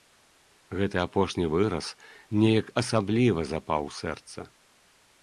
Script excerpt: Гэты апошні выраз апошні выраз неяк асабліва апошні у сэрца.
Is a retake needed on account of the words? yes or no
yes